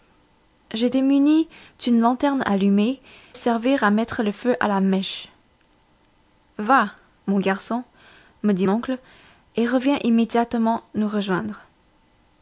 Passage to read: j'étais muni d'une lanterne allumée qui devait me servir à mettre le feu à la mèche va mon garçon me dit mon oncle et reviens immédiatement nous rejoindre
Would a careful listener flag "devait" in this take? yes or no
yes